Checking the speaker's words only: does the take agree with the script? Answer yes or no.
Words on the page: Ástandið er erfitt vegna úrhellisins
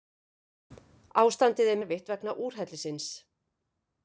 yes